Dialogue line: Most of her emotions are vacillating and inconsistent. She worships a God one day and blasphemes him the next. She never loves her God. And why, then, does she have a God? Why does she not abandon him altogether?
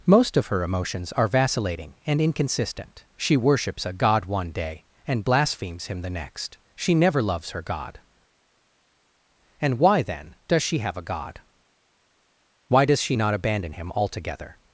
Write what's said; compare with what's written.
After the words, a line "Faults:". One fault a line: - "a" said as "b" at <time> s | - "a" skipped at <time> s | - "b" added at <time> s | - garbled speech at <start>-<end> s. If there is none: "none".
Most of her emotions are vacillating and inconsistent. She worships a God one day and blasphemes him the next. She never loves her God. And why, then, does she have a God? Why does she not abandon him altogether?
Faults:
none